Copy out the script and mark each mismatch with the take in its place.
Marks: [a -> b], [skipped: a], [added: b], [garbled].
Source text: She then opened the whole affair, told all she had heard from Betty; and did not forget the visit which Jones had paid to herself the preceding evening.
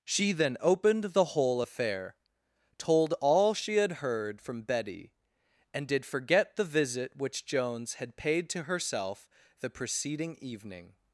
She then opened the whole affair, told all she had heard from Betty; and did [skipped: not] forget the visit which Jones had paid to herself the preceding evening.